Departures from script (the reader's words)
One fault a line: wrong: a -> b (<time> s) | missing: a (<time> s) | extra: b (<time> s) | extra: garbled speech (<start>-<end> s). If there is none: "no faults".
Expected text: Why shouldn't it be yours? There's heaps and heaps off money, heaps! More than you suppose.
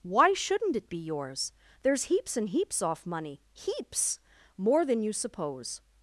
no faults